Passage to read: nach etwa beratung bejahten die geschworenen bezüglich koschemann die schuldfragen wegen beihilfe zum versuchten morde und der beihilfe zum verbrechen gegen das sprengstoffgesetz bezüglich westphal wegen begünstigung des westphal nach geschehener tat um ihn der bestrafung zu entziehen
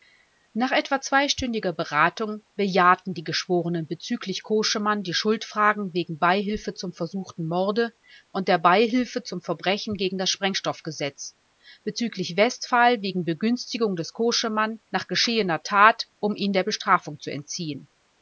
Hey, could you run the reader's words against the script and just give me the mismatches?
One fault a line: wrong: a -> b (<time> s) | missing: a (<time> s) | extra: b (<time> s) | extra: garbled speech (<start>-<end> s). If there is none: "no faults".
extra: zweistündiger (1.0 s)
wrong: westphal -> koschemann (14.1 s)